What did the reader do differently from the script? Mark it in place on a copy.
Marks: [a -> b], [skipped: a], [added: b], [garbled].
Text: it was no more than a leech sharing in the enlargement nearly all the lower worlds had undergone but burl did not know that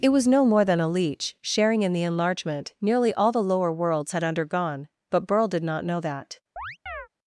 it was no more than a leech sharing in the enlargement nearly all the lower worlds had undergone but burl did not know that